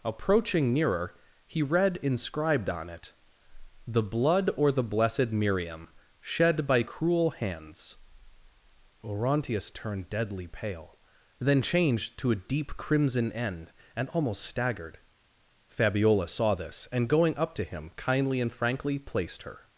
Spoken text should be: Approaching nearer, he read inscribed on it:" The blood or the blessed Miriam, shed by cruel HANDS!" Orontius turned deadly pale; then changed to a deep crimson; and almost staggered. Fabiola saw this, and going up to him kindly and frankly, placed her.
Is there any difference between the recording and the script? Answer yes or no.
yes